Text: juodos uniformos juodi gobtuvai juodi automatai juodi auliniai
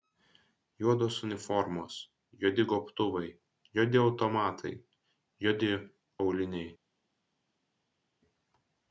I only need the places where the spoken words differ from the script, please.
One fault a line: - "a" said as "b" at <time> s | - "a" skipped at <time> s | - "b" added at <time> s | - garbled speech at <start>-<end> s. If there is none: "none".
none